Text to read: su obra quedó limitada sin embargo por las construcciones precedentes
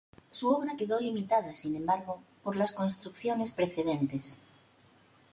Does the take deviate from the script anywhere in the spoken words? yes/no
no